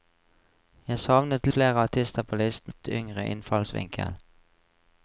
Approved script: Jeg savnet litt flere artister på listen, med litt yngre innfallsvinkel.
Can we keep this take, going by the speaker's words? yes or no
no